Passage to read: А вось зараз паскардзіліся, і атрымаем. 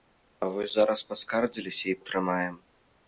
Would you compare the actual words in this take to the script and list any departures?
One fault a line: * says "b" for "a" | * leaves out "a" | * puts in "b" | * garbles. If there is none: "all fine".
all fine